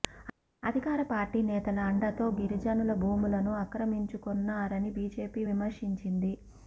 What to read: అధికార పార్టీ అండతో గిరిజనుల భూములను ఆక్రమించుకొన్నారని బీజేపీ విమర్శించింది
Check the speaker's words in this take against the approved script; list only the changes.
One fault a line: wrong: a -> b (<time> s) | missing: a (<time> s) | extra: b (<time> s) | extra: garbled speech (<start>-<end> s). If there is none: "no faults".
extra: నేతల (1.5 s)